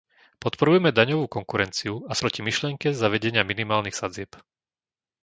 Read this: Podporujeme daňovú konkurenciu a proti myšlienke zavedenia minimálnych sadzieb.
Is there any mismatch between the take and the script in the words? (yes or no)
no